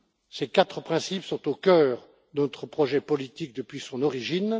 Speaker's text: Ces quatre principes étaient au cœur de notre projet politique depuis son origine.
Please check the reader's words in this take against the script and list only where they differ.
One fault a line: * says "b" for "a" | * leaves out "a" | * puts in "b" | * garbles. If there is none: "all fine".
* says "sont" for "étaient"